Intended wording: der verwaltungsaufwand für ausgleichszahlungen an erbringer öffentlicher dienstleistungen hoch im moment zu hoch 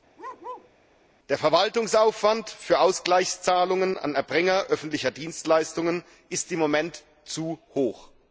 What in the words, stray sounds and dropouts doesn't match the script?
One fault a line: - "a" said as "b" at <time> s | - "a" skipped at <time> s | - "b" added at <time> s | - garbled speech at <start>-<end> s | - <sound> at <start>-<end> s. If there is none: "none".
- bark at 0.2-0.7 s
- "hoch" said as "ist" at 6.3 s